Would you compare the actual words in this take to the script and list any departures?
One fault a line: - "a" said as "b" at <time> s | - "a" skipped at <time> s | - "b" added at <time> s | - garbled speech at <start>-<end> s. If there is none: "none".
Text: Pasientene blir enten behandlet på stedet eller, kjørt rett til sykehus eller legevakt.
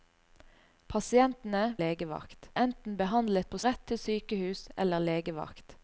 - "blir" said as "legevakt" at 1.8 s
- "stedet eller kjørt" skipped at 3.6 s